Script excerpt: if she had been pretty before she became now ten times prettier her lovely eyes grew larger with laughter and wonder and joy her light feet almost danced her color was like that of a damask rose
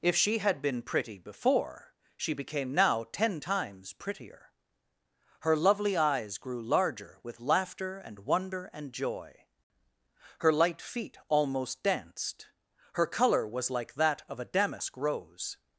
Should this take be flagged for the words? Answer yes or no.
no